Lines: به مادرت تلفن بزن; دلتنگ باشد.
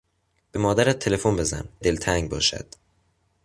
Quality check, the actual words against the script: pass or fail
pass